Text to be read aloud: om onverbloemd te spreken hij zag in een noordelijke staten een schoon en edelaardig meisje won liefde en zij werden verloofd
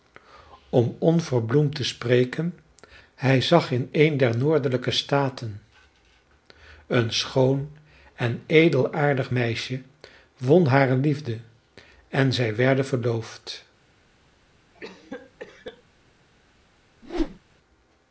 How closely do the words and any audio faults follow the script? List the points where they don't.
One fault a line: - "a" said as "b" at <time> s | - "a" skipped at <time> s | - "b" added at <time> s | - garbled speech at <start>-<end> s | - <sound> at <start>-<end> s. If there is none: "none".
- "der" added at 4.2 s
- "hare" added at 10.7 s
- cough at 14.7-15.8 s
- whoosh at 17.0-17.4 s